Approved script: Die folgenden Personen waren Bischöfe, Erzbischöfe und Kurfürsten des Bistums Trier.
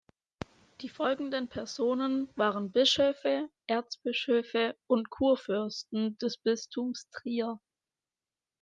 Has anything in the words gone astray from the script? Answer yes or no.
no